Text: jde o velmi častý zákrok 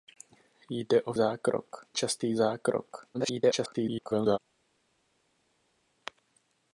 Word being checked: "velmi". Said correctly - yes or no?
no